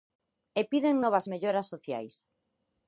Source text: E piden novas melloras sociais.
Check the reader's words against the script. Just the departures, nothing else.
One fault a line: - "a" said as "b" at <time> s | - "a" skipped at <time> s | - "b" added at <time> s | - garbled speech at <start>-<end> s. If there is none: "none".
none